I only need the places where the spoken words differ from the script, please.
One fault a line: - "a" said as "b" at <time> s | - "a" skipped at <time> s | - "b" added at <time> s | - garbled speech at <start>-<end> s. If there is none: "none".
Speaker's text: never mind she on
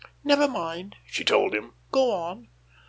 - "told him go" added at 1.2 s